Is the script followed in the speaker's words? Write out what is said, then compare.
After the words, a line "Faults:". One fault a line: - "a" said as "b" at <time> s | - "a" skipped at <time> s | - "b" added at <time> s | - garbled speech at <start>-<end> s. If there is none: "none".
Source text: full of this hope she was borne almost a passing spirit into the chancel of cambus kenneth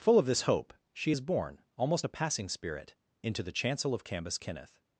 full of this hope she is borne almost a passing spirit into the chancel of cambus kenneth
Faults:
- "was" said as "is" at 1.1 s